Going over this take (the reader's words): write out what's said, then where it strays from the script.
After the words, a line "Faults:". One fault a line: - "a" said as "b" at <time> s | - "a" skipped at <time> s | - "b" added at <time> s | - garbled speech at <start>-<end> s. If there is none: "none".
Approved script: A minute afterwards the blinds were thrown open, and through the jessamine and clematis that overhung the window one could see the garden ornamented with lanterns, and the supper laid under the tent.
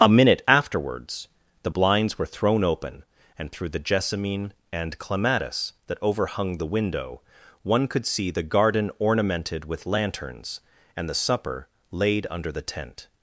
A minute afterwards the blinds were thrown open, and through the jessamine and clematis that overhung the window one could see the garden ornamented with lanterns, and the supper laid under the tent.
Faults:
none